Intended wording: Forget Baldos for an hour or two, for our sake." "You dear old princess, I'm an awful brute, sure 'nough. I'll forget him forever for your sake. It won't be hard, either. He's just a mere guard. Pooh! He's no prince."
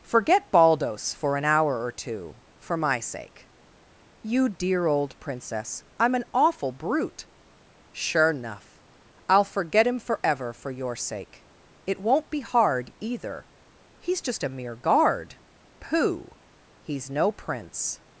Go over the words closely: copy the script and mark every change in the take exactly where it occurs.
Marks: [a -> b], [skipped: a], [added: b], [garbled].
Forget Baldos for an hour or two, for [our -> my] sake." "You dear old princess, I'm an awful brute, sure 'nough. I'll forget him forever for your sake. It won't be hard, either. He's just a mere guard. Pooh! He's no prince."